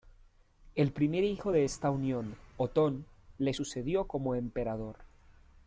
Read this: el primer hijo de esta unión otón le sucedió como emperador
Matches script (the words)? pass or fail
pass